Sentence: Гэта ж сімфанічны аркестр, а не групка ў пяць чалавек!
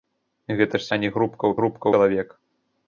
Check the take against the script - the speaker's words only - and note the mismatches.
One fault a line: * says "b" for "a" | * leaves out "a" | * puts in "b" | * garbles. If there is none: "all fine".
* leaves out "сімфанічны аркестр"
* says "групка" for "пяць"